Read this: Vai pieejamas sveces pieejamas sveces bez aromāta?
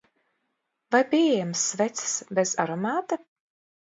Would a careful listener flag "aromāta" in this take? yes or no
no